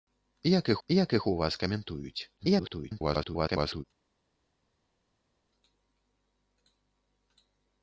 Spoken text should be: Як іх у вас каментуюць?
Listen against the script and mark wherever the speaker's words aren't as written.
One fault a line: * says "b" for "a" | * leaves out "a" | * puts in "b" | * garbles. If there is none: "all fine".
* puts in "як іх"
* garbles